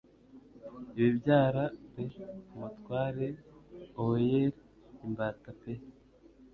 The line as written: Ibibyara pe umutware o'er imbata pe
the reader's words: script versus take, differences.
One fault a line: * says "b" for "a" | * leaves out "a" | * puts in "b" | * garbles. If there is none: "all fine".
all fine